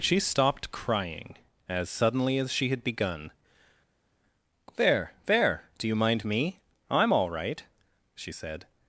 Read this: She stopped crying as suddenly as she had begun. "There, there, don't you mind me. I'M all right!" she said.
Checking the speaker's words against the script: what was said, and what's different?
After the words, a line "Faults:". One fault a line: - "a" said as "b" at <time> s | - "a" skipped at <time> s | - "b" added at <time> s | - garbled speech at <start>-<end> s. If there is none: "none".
She stopped crying as suddenly as she had begun. "There, there, do you mind me. I'M all right!" she said.
Faults:
- "don't" said as "do" at 5.8 s